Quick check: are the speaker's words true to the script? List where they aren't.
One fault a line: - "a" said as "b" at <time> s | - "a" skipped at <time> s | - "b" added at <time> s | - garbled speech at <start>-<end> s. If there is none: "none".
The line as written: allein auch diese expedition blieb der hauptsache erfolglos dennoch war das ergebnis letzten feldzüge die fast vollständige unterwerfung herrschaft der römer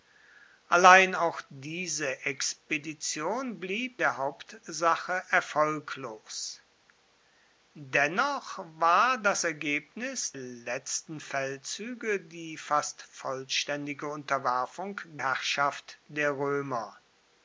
none